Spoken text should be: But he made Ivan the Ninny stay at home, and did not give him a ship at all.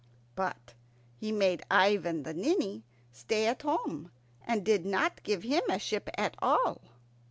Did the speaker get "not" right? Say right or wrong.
right